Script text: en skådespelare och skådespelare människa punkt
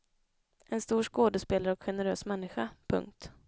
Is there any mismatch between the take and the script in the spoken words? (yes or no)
yes